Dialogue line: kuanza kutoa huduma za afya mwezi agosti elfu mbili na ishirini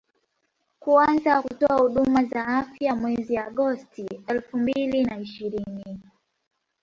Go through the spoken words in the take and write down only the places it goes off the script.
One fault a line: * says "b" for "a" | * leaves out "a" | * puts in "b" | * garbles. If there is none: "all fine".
all fine